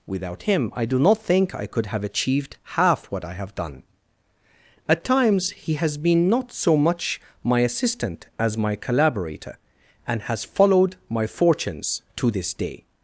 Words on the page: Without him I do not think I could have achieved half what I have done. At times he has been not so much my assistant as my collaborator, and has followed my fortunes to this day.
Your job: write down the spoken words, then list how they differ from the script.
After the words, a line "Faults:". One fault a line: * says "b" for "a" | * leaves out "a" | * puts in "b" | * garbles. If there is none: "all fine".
Without him I do not think I could have achieved half what I have done. At times he has been not so much my assistant as my collaborator, and has followed my fortunes to this day.
Faults:
all fine